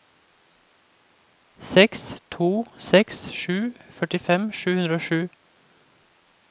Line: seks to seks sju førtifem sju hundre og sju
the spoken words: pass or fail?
pass